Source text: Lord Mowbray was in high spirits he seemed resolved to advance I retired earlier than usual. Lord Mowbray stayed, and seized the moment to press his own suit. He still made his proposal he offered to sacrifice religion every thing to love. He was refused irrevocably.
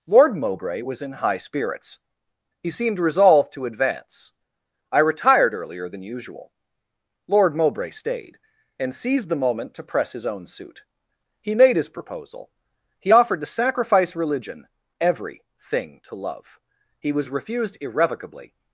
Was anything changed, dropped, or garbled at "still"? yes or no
yes